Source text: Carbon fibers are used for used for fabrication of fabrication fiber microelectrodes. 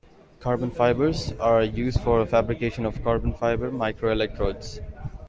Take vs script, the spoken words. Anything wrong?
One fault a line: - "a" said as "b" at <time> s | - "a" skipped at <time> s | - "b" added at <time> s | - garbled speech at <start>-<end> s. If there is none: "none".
- "used for" skipped at 2.2 s
- "fabrication" said as "carbon" at 3.0 s